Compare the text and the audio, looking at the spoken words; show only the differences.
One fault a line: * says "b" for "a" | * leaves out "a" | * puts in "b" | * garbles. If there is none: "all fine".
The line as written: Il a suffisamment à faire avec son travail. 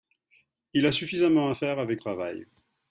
* leaves out "son"